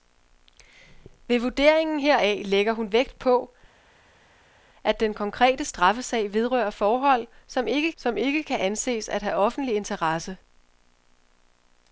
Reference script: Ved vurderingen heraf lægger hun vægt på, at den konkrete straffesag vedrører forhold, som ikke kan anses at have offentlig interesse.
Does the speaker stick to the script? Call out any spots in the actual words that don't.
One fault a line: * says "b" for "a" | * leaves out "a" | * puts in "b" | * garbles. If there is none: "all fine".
* puts in "som ikke"